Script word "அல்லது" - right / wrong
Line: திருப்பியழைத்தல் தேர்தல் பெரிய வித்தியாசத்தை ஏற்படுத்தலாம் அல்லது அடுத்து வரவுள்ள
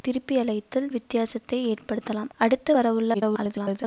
wrong